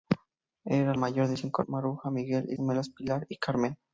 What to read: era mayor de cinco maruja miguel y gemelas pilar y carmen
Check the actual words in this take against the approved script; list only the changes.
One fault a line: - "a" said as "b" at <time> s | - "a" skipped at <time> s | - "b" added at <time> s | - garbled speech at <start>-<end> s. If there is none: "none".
none